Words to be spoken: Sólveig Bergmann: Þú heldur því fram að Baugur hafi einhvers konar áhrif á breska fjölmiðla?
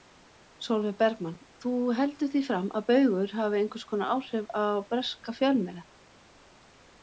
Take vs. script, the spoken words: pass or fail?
pass